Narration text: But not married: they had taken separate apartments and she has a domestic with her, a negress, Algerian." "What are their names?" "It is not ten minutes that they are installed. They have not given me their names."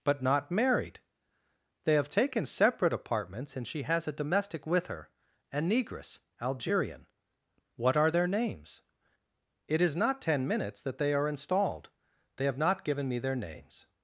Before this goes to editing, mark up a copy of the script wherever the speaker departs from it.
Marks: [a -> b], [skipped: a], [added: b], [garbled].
But not married: they [had -> have] taken separate apartments and she has a domestic with her, a negress, Algerian." "What are their names?" "It is not ten minutes that they are installed. They have not given me their names."